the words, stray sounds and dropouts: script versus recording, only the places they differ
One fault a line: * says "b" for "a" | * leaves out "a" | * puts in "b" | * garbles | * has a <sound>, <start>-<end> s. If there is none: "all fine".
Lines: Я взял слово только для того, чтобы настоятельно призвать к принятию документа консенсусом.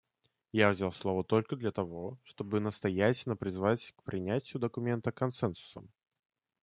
all fine